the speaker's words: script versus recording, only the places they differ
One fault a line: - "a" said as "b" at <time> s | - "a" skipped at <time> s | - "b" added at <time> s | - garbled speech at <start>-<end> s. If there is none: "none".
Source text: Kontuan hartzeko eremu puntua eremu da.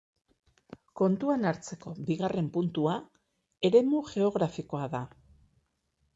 - "eremu" said as "bigarren" at 2.1 s
- "geografikoa" added at 4.2 s